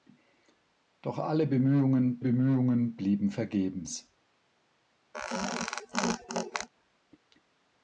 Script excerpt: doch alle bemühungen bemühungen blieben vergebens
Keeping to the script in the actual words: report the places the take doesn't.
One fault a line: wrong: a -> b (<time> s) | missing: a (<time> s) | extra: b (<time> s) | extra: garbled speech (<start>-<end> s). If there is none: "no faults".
no faults